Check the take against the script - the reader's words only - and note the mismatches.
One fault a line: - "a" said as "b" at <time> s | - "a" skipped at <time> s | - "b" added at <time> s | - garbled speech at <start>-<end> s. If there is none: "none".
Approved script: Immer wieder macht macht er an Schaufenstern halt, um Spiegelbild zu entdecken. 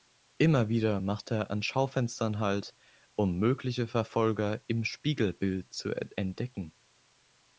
- "macht" skipped at 1.3 s
- "mögliche Verfolger im" added at 3.4 s